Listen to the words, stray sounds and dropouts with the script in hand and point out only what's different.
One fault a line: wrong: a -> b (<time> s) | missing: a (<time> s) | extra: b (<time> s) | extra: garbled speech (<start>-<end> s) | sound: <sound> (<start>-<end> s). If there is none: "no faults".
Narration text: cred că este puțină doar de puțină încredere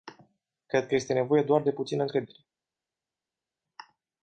wrong: puțină -> nevoie (1.1 s)